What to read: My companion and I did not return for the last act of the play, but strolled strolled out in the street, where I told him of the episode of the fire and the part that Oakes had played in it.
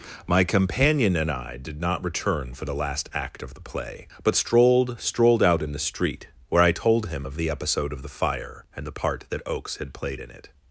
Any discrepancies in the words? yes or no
no